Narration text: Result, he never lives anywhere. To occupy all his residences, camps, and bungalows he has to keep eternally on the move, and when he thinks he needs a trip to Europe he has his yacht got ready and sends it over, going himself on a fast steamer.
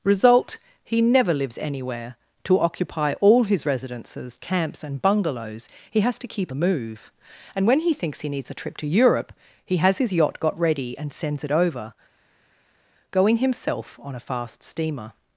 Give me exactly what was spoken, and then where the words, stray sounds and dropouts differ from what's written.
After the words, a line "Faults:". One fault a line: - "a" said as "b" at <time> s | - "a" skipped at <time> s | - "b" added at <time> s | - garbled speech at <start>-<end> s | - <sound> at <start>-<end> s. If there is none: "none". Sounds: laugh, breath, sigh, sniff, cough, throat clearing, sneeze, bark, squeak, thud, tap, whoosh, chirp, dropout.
Result, he never lives anywhere. To occupy all his residences, camps, and bungalows he has to keep the move, and when he thinks he needs a trip to Europe he has his yacht got ready and sends it over, going himself on a fast steamer.
Faults:
- "eternally on" skipped at 6.5 s